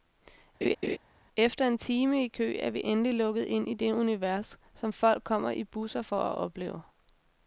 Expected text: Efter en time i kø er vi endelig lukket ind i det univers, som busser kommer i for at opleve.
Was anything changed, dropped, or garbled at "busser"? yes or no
yes